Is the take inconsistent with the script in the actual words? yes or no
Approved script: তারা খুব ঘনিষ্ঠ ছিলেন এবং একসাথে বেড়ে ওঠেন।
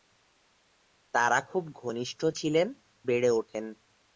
yes